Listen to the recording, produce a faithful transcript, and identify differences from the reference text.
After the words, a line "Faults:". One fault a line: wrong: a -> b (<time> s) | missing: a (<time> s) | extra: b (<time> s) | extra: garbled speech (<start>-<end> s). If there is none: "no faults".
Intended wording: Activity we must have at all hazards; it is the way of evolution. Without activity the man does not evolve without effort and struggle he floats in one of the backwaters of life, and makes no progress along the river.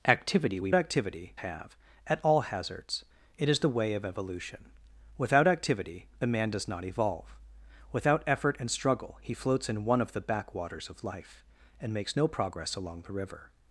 Activity we activity have at all hazards; it is the way of evolution. Without activity the man does not evolve without effort and struggle he floats in one of the backwaters of life, and makes no progress along the river.
Faults:
wrong: must -> activity (0.7 s)